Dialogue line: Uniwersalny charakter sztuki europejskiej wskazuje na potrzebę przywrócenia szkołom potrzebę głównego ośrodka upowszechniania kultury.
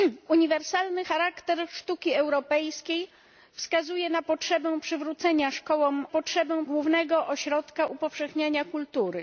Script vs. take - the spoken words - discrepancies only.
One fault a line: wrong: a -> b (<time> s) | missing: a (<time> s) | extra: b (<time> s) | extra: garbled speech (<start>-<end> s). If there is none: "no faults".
no faults